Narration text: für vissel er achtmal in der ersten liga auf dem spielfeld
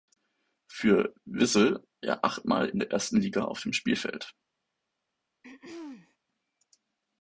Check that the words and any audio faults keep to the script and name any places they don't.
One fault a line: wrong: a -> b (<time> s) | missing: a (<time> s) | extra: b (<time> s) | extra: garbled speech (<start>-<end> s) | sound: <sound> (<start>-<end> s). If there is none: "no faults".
sound: throat clearing (5.4-6.2 s)